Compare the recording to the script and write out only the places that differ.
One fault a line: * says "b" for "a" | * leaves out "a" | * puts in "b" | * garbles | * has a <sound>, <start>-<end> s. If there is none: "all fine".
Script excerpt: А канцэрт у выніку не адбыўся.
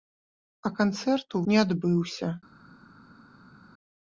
* leaves out "выніку"